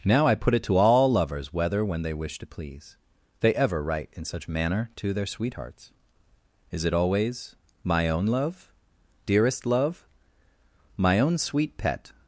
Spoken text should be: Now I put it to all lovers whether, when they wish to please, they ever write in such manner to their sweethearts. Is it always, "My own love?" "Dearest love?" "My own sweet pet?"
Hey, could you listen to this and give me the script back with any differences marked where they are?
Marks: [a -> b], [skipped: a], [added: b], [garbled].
Now I put it to all lovers whether, when they wish to please, they ever write in such manner to their sweethearts. Is it always, "My own love?" "Dearest love?" "My own sweet pet?"